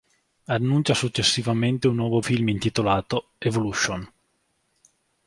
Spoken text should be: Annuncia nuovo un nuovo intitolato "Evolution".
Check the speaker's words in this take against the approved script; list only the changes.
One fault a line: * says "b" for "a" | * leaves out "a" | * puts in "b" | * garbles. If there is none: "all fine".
* says "successivamente" for "nuovo"
* puts in "film"